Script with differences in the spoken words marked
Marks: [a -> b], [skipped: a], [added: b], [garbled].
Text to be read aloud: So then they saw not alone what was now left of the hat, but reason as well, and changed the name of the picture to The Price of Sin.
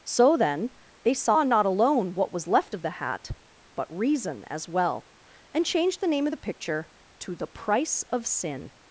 So then they saw not alone what was [skipped: now] left of the hat, but reason as well, and changed the name of the picture to The Price of Sin.